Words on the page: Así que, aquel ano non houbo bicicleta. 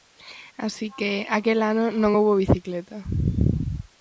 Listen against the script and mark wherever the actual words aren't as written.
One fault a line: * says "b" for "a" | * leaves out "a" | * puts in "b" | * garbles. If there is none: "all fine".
all fine